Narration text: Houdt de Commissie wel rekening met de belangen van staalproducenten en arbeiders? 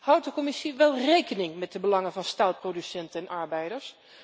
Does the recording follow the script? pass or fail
pass